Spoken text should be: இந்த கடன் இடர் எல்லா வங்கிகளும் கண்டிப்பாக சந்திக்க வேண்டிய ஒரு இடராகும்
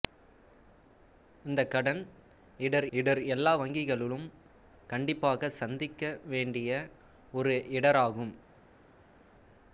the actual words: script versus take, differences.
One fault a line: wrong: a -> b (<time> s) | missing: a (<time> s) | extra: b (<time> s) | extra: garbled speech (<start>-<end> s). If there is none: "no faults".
extra: இடர் (2.9 s)